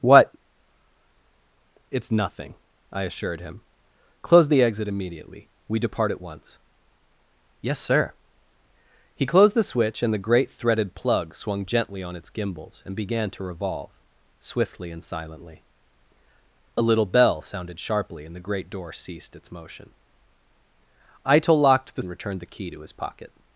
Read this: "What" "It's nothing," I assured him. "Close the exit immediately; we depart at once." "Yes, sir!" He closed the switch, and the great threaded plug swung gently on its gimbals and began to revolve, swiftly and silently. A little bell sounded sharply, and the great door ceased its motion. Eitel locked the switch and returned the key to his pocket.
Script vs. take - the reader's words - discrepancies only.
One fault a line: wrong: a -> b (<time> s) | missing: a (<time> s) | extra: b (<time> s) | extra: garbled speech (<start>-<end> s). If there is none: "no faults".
missing: switch (22.0 s)